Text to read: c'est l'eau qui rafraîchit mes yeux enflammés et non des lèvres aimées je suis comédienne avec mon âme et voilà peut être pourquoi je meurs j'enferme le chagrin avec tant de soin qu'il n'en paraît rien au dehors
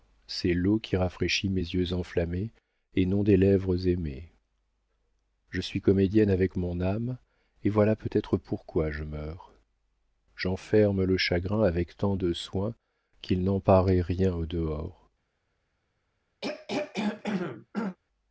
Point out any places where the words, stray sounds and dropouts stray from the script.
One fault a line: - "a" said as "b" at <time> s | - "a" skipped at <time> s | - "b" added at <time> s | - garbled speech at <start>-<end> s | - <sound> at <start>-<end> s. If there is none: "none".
- throat clearing at 16.4-18.0 s